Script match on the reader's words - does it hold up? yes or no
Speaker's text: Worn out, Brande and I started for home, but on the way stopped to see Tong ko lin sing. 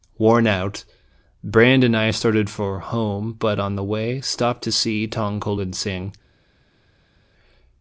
yes